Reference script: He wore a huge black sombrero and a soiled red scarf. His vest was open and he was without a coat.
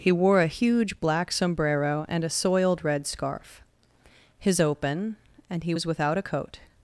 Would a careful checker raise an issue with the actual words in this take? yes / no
yes